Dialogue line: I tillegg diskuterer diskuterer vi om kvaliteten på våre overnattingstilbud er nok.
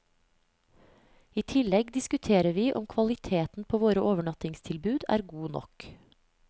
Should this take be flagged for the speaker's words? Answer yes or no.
yes